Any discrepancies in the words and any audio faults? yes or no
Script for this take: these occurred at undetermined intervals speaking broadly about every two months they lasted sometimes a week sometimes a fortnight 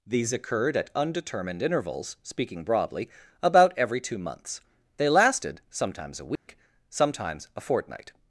yes